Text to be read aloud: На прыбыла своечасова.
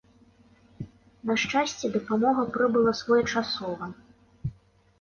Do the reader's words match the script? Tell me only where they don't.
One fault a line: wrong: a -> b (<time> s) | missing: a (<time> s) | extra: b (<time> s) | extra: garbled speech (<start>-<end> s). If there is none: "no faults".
extra: шчасце дапамога (1.4 s)